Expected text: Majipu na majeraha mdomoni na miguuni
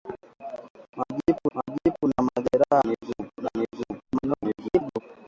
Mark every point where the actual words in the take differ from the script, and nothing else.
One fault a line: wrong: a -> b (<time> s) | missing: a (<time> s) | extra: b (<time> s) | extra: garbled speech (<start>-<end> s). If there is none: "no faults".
extra: majipu (1.5 s)
wrong: mdomoni -> miguuni (2.9 s)
extra: garbled speech (4.1-5.0 s)